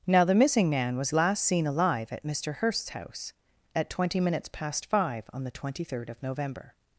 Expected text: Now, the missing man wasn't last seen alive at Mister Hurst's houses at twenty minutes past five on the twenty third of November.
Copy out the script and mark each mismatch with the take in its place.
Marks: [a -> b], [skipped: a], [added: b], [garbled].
Now, the missing man [wasn't -> was] last seen alive at Mister Hurst's [houses -> house] at twenty minutes past five on the twenty third of November.